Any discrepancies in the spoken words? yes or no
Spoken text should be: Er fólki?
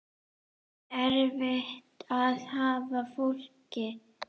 yes